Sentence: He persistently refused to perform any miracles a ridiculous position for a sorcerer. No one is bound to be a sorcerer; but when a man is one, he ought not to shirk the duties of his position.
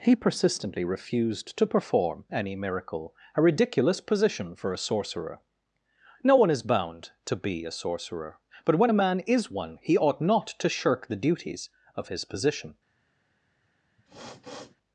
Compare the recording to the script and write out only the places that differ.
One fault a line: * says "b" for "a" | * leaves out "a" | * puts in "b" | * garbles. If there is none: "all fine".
* says "miracle" for "miracles"